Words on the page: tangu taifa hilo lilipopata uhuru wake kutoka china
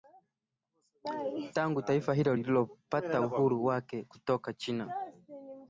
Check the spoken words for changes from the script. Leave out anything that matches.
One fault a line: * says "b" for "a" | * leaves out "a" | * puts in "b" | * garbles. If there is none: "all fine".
all fine